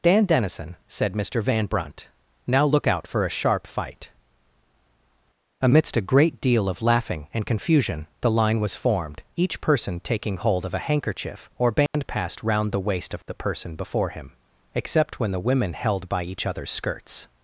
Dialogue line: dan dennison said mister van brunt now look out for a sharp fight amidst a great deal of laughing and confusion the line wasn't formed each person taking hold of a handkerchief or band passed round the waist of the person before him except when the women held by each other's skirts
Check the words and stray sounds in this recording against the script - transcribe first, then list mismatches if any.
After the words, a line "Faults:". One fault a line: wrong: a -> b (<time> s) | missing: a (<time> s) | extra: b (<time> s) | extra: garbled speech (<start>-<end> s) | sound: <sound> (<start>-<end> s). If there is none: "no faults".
dan dennison said mister van brunt now look out for a sharp fight amidst a great deal of laughing and confusion the line was formed each person taking hold of a handkerchief or band passed round the waist of the person before him except when the women held by each other's skirts
Faults:
wrong: wasn't -> was (8.6 s)
sound: dropout (11.9-11.9 s)